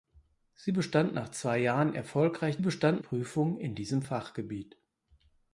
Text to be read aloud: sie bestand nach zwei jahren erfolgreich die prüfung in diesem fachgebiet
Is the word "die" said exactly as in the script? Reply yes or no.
no